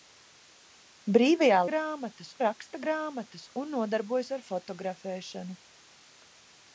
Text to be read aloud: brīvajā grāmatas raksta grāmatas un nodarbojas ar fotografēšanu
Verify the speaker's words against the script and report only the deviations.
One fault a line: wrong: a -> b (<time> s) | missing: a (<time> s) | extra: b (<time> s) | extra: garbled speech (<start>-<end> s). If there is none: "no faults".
no faults